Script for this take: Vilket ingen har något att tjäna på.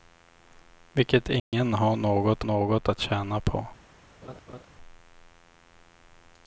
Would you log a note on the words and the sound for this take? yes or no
yes